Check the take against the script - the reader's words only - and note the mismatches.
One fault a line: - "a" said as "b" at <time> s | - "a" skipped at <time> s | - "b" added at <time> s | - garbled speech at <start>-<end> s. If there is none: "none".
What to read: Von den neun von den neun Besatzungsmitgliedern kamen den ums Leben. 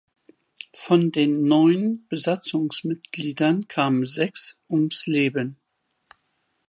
- "von den neun" skipped at 2.1 s
- "den" said as "sechs" at 4.0 s